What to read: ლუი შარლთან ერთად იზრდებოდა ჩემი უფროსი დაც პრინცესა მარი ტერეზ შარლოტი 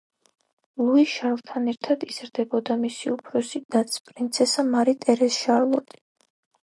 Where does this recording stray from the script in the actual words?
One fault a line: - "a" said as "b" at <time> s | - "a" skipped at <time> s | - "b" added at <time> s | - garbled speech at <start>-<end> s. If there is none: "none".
- "ჩემი" said as "მისი" at 2.8 s